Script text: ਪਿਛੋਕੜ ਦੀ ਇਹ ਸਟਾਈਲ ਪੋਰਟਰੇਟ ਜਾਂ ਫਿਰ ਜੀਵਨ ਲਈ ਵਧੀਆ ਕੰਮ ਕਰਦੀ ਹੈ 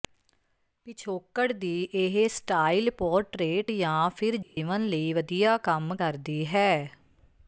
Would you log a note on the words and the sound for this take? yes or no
yes